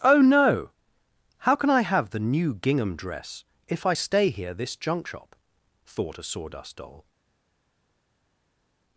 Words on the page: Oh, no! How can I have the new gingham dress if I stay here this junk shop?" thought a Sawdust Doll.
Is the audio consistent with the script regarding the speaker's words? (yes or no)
yes